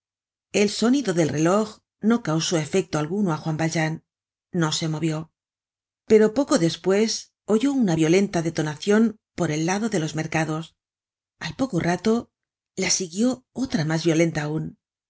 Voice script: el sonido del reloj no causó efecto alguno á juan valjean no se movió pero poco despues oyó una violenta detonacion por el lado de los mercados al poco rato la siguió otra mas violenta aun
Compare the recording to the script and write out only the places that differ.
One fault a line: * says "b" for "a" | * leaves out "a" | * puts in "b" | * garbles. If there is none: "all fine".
all fine